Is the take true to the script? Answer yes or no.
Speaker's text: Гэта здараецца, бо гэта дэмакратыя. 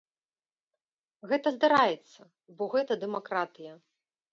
yes